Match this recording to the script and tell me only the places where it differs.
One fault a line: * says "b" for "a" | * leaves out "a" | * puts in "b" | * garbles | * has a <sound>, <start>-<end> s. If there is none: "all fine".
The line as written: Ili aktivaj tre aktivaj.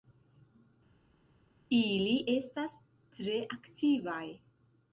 * says "estas" for "aktivaj"